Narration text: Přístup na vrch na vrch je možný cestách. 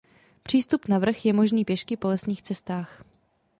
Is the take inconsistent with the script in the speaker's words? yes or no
yes